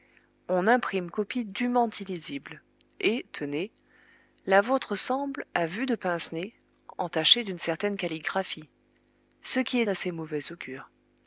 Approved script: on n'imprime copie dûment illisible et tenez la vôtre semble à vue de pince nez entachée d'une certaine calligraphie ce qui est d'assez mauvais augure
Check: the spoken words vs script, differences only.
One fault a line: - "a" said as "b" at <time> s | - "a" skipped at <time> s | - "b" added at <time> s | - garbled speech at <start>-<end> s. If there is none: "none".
none